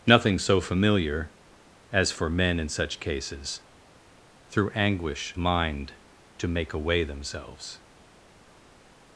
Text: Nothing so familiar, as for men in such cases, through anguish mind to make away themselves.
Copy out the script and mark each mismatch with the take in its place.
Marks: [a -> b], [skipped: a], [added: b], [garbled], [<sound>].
Nothing so familiar, as for men in such cases, through anguish mind to make away themselves.